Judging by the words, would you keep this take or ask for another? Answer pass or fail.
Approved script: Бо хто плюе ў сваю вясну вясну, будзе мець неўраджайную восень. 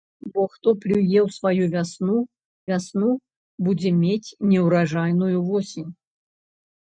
pass